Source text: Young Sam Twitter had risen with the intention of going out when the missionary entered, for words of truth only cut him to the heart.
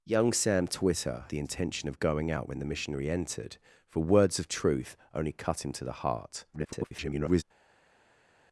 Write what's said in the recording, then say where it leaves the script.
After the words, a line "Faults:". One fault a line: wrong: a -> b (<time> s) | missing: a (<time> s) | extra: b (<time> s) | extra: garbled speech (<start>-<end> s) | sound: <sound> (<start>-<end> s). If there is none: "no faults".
Young Sam Twitter the intention of going out when the missionary entered, for words of truth only cut him to the heart. [garbled]
Faults:
missing: had risen with (1.2 s)
extra: garbled speech (6.5-7.4 s)